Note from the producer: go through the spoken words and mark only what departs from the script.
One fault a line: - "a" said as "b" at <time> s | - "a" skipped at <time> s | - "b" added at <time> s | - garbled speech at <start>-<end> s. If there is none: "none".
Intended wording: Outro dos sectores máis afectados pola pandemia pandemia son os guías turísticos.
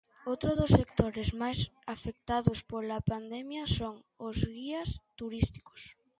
- "pandemia" skipped at 3.6 s